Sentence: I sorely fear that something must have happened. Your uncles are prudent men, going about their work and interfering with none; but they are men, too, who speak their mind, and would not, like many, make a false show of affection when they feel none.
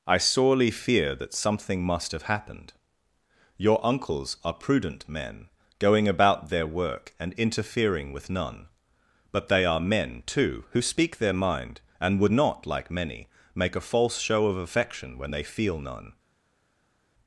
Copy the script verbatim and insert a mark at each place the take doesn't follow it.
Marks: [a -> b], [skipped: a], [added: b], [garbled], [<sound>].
I sorely fear that something must have happened. Your uncles are prudent men, going about their work and interfering with none; but they are men, too, who speak their mind, and would not, like many, make a false show of affection when they feel none.